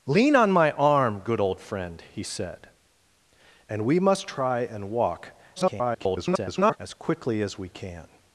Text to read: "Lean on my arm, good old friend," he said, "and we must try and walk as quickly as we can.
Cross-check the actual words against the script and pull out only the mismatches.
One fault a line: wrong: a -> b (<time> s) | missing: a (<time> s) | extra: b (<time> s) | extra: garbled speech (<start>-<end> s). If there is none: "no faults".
extra: garbled speech (5.6-6.8 s)